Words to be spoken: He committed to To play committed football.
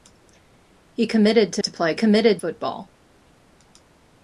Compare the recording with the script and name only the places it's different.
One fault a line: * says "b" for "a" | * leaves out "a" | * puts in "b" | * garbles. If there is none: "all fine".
all fine